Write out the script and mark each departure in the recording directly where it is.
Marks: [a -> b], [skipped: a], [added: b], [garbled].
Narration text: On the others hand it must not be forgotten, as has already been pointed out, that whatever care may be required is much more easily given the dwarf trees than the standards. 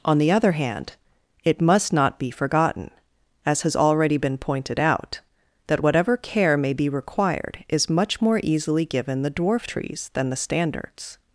On the [others -> other] hand it must not be forgotten, as has already been pointed out, that whatever care may be required is much more easily given the dwarf trees than the standards.